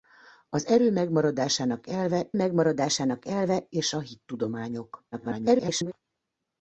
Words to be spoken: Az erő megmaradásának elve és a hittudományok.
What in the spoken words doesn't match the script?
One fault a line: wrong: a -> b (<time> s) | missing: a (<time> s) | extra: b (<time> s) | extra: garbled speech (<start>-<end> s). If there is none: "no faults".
extra: megmaradásának elve (2.4 s)
extra: garbled speech (5.1-5.9 s)